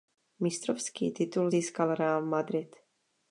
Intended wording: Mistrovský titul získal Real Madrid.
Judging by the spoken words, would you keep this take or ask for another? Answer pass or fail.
pass